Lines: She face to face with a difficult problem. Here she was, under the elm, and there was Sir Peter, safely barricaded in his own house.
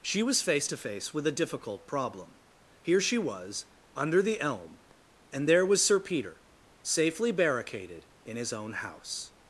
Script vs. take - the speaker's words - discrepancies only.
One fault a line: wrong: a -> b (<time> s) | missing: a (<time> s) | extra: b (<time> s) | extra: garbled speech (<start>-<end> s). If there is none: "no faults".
extra: was (0.2 s)